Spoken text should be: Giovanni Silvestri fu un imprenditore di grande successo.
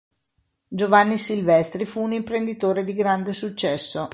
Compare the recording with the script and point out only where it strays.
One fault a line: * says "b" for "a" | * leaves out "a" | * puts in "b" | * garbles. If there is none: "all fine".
all fine